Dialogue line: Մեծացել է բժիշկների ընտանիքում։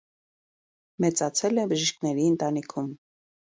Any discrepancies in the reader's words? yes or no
no